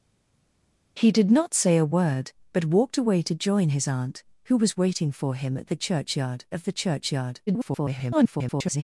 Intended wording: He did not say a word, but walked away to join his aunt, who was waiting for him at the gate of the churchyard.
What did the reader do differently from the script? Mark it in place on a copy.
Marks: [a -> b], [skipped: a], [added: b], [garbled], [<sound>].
He did not say a word, but walked away to join his aunt, who was waiting for him at the [gate -> churchyard] of the churchyard. [garbled]